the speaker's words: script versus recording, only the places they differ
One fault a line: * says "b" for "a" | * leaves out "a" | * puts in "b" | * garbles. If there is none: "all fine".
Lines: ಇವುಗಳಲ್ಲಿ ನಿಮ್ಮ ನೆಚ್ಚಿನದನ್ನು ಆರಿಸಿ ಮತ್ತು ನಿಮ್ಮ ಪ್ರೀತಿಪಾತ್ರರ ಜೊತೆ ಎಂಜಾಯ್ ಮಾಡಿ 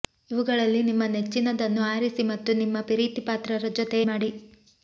* leaves out "ಎಂಜಾಯ್"